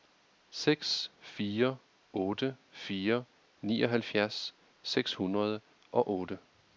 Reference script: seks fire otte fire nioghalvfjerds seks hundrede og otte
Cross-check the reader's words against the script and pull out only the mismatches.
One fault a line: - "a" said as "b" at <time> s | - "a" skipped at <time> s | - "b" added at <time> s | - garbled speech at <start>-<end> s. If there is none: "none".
none